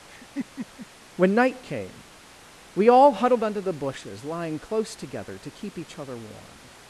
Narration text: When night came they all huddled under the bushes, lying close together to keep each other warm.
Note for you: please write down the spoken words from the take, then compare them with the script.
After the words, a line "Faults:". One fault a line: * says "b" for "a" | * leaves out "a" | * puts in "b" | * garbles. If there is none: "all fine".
When night came we all huddled under the bushes, lying close together to keep each other warm.
Faults:
* says "we" for "they"